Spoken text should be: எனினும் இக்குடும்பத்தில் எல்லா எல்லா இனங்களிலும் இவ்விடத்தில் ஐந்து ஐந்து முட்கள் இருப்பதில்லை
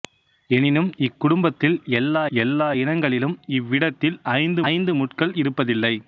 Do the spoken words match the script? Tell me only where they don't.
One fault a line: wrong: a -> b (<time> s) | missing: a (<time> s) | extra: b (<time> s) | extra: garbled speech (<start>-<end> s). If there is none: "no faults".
no faults